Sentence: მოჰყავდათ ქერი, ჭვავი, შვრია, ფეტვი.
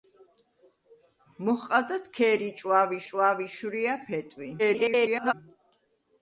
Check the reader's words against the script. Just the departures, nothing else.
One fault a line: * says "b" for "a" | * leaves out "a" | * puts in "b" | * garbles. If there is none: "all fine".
* puts in "ჭვავი"
* garbles